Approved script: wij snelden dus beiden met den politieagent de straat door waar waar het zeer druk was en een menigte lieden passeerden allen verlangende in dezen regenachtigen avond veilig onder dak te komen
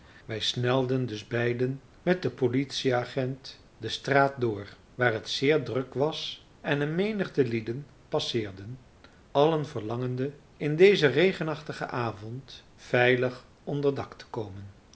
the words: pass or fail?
fail